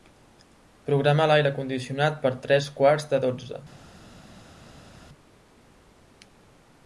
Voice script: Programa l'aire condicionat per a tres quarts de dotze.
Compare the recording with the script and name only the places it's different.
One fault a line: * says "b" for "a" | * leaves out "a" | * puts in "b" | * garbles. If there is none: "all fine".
all fine